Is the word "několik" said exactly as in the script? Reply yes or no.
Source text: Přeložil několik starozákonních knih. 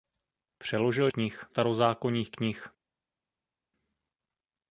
no